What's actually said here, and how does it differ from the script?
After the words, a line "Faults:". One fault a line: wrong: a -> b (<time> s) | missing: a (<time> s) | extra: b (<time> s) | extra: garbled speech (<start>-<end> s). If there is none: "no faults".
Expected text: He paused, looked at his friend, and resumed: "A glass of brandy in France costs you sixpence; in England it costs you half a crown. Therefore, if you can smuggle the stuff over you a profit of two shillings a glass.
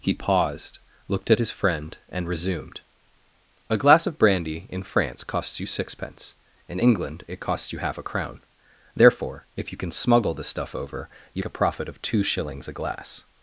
He paused, looked at his friend, and resumed: "A glass of brandy in France costs you sixpence; in England it costs you half a crown. Therefore, if you can smuggle the stuff over you a profit of two shillings a glass.
Faults:
no faults